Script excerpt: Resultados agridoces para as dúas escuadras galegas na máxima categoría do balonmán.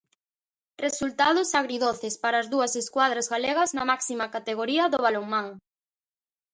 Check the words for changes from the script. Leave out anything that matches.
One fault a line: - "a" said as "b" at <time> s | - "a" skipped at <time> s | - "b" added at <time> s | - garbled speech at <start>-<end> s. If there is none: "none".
none